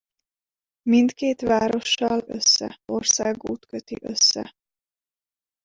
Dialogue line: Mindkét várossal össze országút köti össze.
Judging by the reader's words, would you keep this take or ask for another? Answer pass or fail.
pass